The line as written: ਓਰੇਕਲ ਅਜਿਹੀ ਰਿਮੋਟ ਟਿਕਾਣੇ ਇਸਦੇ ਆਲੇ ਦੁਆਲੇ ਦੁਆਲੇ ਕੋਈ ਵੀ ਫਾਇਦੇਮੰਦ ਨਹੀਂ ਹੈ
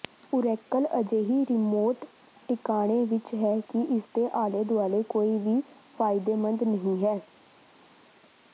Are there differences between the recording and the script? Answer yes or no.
yes